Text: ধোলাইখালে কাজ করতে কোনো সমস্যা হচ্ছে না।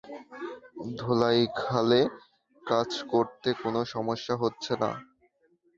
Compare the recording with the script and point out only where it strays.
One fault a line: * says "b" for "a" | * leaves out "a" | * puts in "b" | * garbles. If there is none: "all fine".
all fine